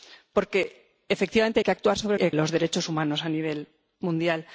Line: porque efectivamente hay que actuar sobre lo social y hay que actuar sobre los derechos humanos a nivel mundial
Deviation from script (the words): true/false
true